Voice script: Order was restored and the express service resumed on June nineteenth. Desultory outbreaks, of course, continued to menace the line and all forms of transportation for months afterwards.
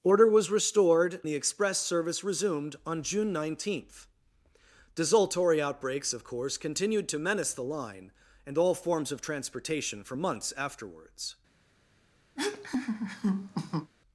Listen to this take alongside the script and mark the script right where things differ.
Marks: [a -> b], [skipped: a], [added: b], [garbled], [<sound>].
Order was restored [skipped: and] the express service resumed on June nineteenth. Desultory outbreaks, of course, continued to menace the line and all forms of transportation for months afterwards. [laugh]